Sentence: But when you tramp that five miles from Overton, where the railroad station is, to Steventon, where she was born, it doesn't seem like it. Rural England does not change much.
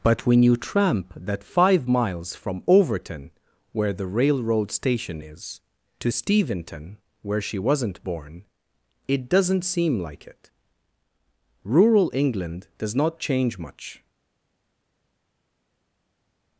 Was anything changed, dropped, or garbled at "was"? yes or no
yes